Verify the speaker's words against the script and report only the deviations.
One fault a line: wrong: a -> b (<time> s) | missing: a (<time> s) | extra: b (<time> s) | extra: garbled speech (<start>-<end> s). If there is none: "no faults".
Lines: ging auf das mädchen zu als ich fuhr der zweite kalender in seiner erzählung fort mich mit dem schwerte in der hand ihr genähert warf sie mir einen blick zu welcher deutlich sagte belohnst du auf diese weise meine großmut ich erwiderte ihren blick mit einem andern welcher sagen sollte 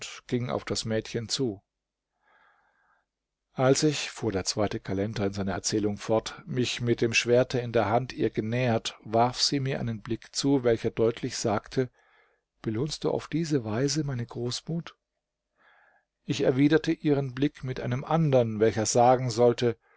no faults